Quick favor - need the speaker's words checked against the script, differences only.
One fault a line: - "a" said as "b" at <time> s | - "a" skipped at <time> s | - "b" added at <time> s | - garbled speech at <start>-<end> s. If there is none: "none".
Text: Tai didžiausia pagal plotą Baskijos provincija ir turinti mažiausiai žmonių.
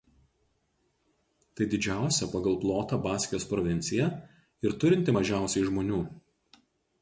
none